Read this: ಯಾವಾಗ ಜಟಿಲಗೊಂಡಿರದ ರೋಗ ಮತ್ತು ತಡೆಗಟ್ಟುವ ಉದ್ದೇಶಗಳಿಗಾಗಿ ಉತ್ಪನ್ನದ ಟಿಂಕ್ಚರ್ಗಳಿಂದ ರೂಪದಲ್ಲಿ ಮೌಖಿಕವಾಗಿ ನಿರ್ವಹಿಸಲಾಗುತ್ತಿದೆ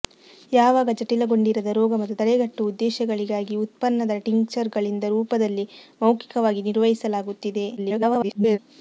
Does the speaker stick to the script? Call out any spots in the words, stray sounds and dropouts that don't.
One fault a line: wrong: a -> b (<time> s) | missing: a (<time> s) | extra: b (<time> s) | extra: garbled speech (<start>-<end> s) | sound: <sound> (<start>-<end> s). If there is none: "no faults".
extra: garbled speech (7.8-8.6 s)